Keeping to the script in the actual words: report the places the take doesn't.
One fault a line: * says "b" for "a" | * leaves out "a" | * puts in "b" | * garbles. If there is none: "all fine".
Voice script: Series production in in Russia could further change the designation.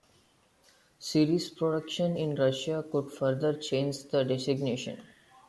* leaves out "in"